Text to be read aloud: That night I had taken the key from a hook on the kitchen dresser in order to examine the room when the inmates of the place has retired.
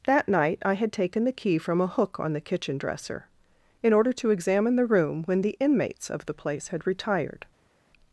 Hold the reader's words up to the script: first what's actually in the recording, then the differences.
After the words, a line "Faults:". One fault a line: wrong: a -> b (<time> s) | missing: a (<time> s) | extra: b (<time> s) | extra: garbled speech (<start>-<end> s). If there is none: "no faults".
That night I had taken the key from a hook on the kitchen dresser in order to examine the room when the inmates of the place had retired.
Faults:
wrong: has -> had (6.7 s)